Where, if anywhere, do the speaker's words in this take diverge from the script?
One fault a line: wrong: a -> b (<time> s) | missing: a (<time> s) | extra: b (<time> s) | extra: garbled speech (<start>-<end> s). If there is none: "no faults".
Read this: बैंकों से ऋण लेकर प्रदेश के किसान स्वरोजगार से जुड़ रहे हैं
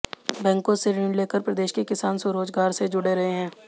no faults